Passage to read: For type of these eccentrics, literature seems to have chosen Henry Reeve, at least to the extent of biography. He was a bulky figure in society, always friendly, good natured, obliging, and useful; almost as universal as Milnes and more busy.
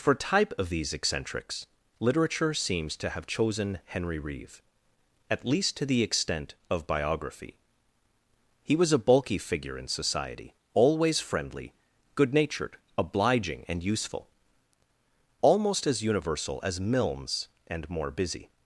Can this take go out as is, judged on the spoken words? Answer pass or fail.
pass